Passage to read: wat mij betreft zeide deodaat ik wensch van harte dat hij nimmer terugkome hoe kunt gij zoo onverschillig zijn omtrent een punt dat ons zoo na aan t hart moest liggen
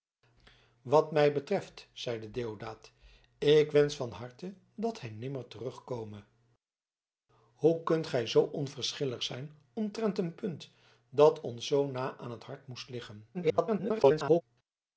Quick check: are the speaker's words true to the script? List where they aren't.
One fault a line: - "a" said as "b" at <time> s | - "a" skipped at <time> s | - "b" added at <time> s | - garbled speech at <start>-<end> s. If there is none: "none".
- garbled speech at 13.3-14.4 s